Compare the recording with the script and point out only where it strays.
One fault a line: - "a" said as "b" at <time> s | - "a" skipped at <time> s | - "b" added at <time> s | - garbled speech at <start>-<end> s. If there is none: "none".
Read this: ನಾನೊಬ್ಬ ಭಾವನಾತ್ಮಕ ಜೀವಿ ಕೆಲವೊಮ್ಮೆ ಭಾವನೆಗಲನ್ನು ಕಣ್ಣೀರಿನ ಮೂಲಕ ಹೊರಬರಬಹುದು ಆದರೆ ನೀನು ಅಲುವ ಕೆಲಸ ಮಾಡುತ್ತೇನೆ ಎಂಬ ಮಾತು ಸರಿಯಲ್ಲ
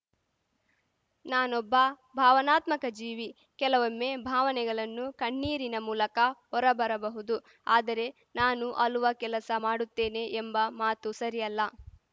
- "ನೀನು" said as "ನಾನು" at 8.4 s